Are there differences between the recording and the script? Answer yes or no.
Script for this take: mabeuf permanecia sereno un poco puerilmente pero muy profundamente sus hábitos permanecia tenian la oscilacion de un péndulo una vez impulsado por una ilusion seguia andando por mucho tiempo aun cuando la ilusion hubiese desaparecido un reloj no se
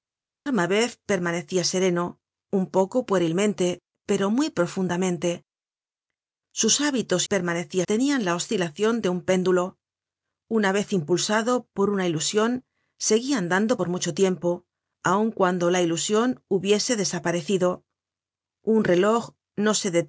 no